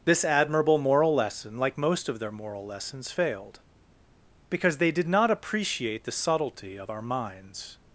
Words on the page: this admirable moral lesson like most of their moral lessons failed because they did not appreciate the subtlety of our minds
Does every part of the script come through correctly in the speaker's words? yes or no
yes